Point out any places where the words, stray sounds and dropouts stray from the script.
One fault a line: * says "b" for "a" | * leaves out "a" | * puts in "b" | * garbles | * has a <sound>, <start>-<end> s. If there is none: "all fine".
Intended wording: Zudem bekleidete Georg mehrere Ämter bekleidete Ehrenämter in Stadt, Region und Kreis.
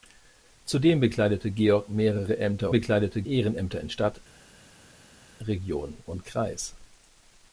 all fine